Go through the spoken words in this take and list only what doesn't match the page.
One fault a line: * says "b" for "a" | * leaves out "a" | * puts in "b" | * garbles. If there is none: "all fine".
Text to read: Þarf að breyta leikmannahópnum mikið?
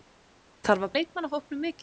* leaves out "breyta"